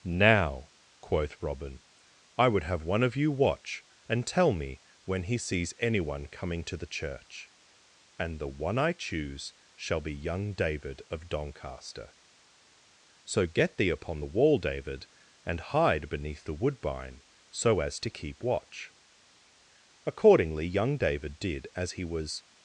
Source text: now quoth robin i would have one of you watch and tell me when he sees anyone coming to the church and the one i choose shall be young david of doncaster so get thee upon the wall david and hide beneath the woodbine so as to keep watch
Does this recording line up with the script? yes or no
no